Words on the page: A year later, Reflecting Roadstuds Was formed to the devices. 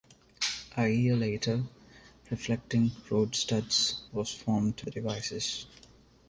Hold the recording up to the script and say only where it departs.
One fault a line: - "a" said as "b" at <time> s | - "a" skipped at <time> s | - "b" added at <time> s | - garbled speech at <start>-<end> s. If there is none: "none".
none